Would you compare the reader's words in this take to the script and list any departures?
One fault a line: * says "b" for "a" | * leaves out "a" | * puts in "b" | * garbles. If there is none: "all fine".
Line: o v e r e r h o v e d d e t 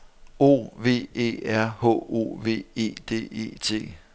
* leaves out "e r"
* leaves out "d"